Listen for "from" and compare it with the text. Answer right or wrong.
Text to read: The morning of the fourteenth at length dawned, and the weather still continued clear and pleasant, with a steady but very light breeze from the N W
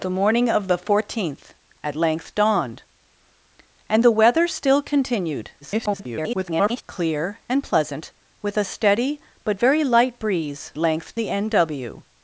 wrong